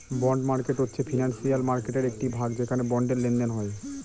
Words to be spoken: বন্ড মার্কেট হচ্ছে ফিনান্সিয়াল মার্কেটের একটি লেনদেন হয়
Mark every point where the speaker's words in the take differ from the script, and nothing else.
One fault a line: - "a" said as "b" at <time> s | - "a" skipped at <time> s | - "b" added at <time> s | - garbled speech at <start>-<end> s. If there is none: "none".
- "ভাগ যেখানে বন্ডের" added at 2.3 s